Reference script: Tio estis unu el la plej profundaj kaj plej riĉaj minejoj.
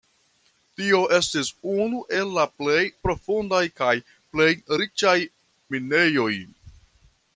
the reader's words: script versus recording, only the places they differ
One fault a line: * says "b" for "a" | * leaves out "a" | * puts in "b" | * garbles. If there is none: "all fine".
all fine